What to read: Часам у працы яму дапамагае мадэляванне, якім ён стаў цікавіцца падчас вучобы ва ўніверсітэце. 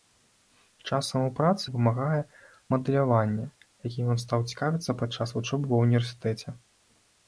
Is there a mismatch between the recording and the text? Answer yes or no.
yes